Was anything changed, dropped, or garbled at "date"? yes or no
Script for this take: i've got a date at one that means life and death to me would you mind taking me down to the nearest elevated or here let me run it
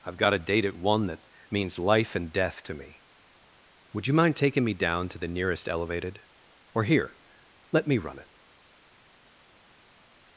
no